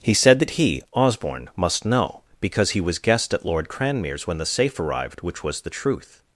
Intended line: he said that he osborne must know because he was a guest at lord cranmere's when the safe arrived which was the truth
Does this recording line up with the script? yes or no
no